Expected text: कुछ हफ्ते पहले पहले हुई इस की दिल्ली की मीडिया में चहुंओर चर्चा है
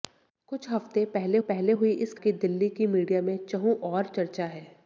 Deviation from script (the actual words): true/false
false